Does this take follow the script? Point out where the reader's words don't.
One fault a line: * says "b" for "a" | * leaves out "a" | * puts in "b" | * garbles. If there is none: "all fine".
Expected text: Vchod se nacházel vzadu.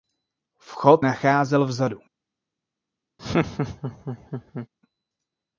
* leaves out "se"